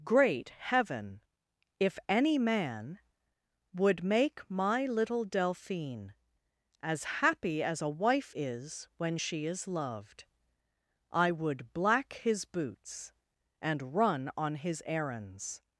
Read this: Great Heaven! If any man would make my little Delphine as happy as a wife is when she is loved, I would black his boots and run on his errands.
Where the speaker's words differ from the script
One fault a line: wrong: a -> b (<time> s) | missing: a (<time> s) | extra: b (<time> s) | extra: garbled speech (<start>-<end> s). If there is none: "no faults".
no faults